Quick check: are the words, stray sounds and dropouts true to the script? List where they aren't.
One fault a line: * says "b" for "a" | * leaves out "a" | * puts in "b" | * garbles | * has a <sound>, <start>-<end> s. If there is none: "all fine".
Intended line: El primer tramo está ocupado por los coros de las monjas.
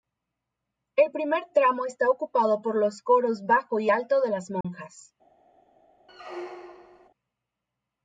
* puts in "bajo y alto"
* has a dropout, 4.6-4.6 s
* has a squeak, 6.1-7.1 s